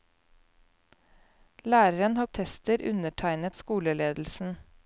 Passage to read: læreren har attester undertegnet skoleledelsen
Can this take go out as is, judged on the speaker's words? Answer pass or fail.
pass